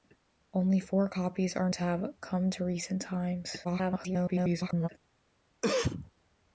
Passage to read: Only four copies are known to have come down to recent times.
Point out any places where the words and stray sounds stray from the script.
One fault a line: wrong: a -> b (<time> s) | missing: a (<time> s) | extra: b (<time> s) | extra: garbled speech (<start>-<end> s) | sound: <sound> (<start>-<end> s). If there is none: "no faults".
missing: known (1.7 s)
missing: down (2.5 s)
extra: garbled speech (3.6-4.9 s)
sound: cough (5.6-6.1 s)